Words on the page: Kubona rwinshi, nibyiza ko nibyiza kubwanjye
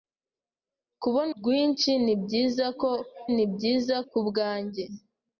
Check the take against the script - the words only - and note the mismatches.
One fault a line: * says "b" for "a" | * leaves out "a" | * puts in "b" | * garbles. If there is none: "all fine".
all fine